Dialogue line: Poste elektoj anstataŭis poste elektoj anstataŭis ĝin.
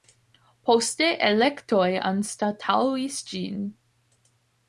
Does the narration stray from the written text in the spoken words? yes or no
yes